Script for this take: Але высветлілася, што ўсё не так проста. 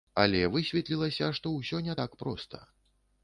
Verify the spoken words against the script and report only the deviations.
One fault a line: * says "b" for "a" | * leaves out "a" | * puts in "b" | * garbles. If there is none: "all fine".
all fine